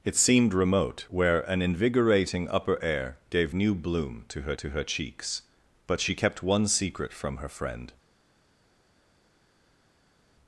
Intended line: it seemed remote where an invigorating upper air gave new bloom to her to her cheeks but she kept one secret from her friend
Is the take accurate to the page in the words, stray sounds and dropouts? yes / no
yes